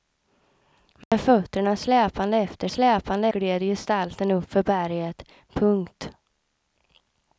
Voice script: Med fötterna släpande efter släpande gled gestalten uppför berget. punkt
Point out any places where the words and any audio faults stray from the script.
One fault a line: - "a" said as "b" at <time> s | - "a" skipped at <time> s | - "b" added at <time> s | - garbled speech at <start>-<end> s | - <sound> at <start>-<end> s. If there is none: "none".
- dropout at 1.0-1.1 s